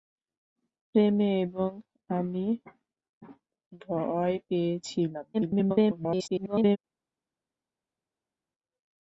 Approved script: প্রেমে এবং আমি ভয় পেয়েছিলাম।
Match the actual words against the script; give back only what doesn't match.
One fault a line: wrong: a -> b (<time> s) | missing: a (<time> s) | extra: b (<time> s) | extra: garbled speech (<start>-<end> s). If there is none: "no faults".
extra: garbled speech (5.3-6.8 s)